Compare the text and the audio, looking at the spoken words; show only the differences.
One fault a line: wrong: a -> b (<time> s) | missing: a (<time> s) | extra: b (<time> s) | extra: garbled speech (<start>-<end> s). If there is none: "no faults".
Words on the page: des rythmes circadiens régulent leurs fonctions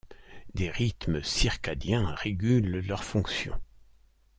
no faults